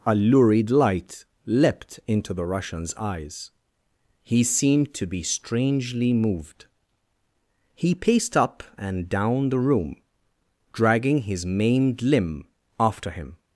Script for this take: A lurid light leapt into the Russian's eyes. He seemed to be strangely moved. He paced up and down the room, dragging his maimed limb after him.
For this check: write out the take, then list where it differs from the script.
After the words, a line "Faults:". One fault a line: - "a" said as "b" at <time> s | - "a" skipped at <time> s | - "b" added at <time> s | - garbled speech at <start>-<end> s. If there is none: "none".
A lurid light leapt into the Russian's eyes. He seemed to be strangely moved. He paced up and down the room, dragging his maimed limb after him.
Faults:
none